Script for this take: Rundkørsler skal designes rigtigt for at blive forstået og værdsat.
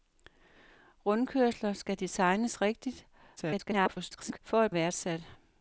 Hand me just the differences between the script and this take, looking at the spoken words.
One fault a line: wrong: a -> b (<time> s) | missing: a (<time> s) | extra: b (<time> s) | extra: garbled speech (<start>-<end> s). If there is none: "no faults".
extra: garbled speech (3.4-4.4 s)
missing: blive forstået og (4.7 s)